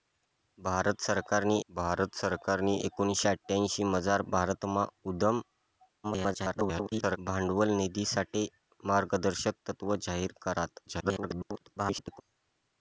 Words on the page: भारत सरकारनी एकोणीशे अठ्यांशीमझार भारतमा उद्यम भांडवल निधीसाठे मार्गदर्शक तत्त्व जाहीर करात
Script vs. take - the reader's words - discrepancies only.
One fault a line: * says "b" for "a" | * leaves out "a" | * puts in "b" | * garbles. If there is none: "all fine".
* puts in "भारत सरकारनी"
* garbles
* garbles